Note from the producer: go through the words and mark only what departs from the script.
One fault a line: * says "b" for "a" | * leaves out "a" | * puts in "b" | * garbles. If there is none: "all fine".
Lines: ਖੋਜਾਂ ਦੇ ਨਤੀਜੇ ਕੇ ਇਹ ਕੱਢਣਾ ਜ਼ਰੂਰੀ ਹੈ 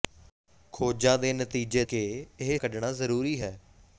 all fine